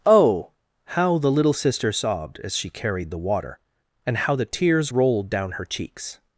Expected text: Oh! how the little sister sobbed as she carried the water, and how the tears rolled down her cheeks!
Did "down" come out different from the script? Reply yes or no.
no